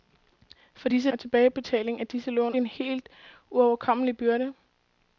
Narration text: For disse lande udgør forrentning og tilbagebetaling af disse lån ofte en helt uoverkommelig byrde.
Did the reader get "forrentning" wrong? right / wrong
wrong